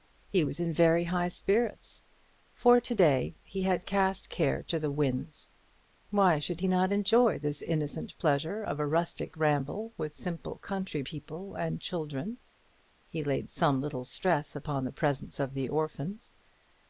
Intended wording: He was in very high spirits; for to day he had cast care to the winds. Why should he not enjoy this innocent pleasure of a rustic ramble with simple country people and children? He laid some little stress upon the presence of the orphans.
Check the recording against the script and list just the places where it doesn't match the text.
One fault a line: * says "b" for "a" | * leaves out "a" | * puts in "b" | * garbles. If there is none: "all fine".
all fine